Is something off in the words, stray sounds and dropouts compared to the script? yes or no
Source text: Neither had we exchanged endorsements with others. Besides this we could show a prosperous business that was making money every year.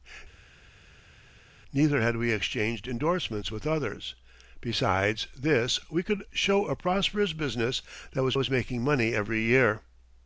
yes